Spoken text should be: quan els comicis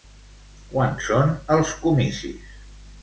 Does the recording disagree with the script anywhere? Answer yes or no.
yes